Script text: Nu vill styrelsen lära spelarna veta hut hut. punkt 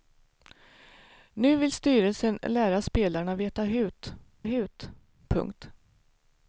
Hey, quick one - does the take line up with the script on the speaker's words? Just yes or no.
yes